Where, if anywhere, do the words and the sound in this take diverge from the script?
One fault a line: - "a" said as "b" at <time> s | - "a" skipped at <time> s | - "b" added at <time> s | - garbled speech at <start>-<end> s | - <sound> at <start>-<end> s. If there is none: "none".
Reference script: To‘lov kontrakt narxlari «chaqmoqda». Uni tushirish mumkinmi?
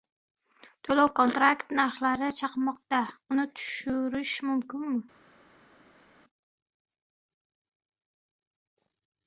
none